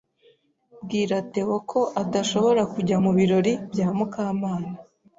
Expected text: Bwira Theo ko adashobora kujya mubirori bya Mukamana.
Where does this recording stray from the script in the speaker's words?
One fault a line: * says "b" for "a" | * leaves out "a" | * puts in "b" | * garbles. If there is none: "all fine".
all fine